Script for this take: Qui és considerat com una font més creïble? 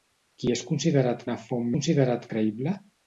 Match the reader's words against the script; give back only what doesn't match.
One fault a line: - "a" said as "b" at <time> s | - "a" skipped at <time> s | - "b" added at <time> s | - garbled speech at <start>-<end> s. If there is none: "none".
- "com" skipped at 1.2 s
- "més" said as "considerat" at 1.7 s